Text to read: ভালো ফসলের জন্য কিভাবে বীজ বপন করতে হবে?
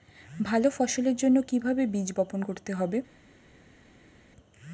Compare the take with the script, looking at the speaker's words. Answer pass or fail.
pass